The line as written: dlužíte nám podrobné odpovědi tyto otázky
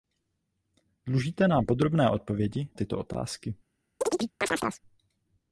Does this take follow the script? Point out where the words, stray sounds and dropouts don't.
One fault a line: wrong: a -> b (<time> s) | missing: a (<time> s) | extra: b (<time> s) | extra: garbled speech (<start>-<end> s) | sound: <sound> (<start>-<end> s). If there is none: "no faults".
sound: chirp (4.0-4.8 s)